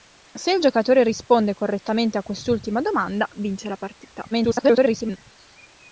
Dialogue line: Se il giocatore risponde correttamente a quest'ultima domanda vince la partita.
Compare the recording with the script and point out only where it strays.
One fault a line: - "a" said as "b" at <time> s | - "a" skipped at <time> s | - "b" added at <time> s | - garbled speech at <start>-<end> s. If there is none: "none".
- garbled speech at 4.3-5.2 s